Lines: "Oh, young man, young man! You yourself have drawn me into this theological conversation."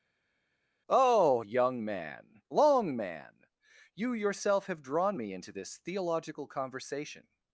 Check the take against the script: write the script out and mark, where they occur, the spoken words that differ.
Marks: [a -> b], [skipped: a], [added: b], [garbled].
"Oh, young man, [young -> long] man! You yourself have drawn me into this theological conversation."